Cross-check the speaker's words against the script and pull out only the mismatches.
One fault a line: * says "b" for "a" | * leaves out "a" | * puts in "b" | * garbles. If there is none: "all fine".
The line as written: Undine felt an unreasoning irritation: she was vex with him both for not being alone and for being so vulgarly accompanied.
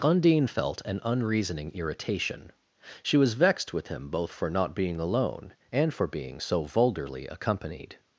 * says "vexed" for "vex"